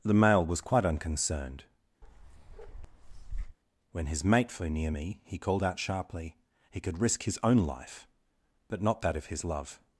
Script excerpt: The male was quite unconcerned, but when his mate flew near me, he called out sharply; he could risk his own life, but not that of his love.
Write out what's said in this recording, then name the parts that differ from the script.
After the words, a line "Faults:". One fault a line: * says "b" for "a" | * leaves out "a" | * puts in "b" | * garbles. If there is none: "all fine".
The male was quite unconcerned, when his mate flew near me, he called out sharply; he could risk his own life, but not that of his love.
Faults:
* leaves out "but"